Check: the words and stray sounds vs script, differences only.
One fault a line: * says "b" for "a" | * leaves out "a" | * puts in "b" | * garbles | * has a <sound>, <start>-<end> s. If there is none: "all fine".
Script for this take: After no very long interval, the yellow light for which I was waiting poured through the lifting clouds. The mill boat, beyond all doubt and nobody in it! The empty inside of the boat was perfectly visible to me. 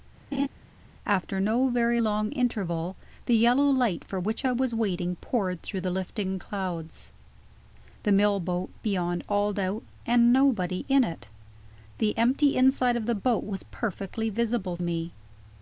* has a laugh, 0.3-0.5 s
* leaves out "to"